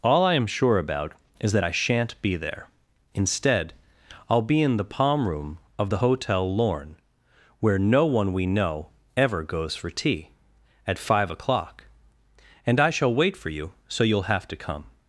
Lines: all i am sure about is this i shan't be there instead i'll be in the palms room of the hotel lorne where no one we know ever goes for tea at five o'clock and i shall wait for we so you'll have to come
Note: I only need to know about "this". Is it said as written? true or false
false